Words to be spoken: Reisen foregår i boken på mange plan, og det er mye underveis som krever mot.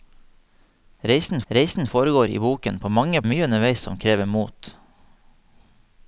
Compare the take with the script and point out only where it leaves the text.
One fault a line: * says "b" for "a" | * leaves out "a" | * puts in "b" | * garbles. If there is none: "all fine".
* puts in "reisen"
* leaves out "plan og det"